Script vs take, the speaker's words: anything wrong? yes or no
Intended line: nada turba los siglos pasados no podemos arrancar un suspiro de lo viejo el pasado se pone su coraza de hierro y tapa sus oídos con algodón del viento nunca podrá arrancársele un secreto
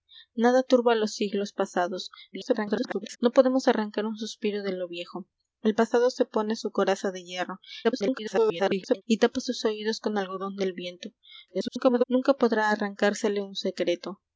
yes